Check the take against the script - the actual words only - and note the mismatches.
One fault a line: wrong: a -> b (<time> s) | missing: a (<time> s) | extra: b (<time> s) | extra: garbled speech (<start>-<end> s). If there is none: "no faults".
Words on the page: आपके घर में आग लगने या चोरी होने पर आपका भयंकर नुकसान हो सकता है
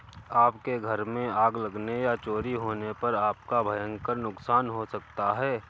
no faults